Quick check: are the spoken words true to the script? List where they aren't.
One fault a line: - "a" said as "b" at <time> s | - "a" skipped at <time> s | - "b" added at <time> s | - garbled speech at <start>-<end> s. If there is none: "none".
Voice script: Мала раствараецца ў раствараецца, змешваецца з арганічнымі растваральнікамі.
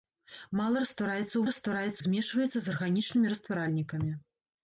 none